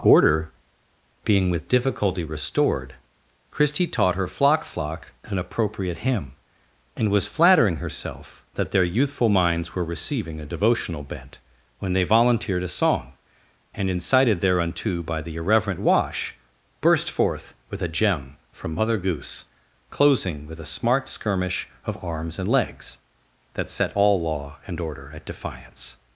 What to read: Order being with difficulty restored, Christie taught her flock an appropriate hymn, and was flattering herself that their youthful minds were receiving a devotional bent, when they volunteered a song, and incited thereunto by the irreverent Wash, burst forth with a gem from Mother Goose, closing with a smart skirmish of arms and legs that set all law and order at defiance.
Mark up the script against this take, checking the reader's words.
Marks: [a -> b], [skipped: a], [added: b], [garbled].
Order being with difficulty restored, Christie taught her flock [added: flock] an appropriate hymn, and was flattering herself that their youthful minds were receiving a devotional bent, when they volunteered a song, and incited thereunto by the irreverent Wash, burst forth with a gem from Mother Goose, closing with a smart skirmish of arms and legs that set all law and order at defiance.